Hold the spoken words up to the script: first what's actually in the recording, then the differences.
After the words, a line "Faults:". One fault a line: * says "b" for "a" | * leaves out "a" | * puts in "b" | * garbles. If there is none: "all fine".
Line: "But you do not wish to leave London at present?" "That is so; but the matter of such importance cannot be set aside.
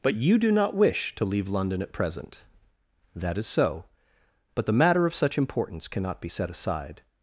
"But you do not wish to leave London at present?" "That is so; but the matter of such importance cannot be set aside.
Faults:
all fine